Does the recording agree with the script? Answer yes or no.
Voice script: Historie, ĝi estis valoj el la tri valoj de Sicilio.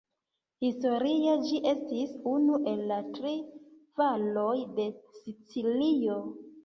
no